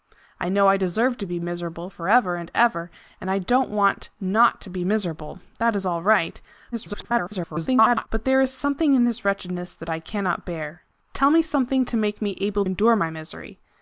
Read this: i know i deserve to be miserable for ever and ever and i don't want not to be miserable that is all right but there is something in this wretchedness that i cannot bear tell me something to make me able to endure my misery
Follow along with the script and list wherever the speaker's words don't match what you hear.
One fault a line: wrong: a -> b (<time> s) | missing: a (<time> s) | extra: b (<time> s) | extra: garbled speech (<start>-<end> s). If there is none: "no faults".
extra: garbled speech (6.7-8.1 s)
missing: to (12.6 s)